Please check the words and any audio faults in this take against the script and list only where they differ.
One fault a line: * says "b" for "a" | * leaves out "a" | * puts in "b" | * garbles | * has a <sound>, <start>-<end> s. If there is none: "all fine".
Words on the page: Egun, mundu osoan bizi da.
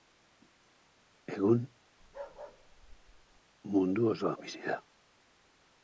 * has a bark, 2.0-3.4 s